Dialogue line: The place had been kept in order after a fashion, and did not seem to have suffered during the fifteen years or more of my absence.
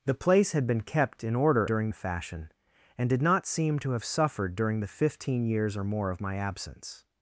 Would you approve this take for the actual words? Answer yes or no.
no